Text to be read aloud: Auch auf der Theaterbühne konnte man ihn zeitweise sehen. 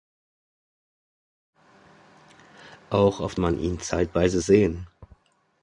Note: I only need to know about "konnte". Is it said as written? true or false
false